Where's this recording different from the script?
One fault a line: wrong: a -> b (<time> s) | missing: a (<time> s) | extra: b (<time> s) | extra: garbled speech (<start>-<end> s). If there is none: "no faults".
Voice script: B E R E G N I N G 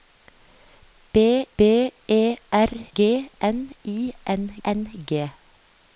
extra: b (1.6 s)
missing: E (2.7 s)
extra: N (4.6 s)